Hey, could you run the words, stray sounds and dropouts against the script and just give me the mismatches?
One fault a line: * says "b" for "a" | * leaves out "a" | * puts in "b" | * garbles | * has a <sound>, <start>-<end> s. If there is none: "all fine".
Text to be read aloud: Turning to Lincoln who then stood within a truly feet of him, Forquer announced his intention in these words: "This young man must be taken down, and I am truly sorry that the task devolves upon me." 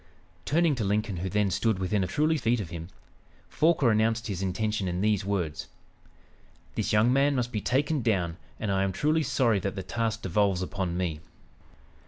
all fine